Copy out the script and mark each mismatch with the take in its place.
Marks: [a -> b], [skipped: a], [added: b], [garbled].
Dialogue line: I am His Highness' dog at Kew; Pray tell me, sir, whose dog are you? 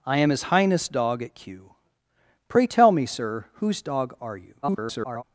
I am His Highness' dog at Kew; Pray tell me, sir, whose dog are you? [garbled]